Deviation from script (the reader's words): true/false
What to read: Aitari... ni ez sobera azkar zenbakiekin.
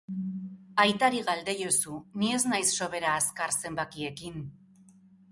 true